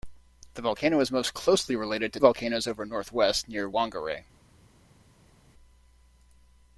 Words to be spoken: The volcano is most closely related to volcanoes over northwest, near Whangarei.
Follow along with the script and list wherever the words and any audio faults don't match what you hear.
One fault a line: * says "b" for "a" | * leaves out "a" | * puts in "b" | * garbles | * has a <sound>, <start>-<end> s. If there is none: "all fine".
all fine